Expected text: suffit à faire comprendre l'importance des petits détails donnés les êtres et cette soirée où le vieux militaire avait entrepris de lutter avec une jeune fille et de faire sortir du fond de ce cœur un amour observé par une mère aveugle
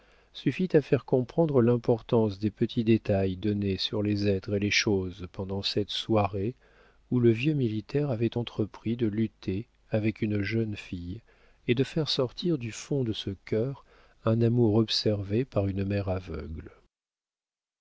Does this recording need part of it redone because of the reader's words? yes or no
yes